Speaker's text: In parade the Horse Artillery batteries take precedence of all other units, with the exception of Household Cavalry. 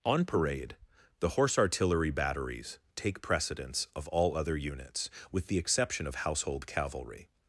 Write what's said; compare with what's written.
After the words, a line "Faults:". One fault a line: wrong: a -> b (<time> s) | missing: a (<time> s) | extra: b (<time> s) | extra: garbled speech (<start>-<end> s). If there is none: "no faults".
On parade the Horse Artillery batteries take precedence of all other units, with the exception of Household Cavalry.
Faults:
wrong: In -> On (0.0 s)